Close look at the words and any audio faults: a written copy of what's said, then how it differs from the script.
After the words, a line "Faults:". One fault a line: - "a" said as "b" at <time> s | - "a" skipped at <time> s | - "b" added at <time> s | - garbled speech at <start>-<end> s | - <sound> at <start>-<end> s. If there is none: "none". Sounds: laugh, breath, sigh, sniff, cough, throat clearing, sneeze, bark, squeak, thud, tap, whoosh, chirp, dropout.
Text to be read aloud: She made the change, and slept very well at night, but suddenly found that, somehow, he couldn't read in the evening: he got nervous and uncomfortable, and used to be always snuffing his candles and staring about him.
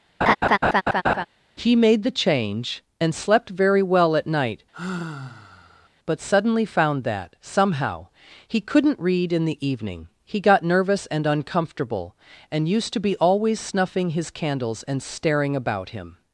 He made the change, and slept very well at night, but suddenly found that, somehow, he couldn't read in the evening: he got nervous and uncomfortable, and used to be always snuffing his candles and staring about him.
Faults:
- laugh at 0.2-1.3 s
- "She" said as "He" at 1.6 s
- sigh at 4.7-5.9 s